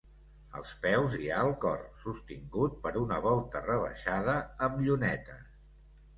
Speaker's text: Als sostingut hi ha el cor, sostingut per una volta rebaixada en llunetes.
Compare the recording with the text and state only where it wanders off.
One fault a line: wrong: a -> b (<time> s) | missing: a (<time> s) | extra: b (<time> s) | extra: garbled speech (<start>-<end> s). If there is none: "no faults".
wrong: sostingut -> peus (0.8 s)
wrong: en -> amb (4.7 s)